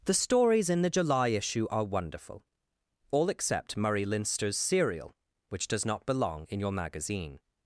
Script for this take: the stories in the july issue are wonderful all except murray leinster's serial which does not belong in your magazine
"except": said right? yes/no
yes